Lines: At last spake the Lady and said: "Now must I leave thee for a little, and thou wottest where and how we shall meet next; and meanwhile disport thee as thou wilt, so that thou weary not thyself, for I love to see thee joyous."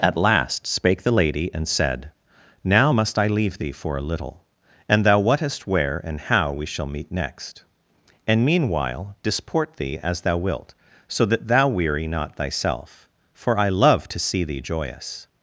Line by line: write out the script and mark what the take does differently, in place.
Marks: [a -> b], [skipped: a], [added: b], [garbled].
At last spake the Lady and said: "Now must I leave thee for a little, and thou wottest where and how we shall meet next; and meanwhile disport thee as thou wilt, so that thou weary not thyself, for I love to see thee joyous."